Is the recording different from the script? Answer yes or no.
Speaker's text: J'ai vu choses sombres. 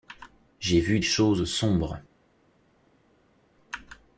no